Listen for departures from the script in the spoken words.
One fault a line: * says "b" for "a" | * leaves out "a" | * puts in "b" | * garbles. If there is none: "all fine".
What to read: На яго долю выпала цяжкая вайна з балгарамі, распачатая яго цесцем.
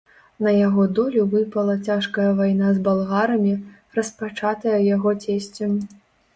all fine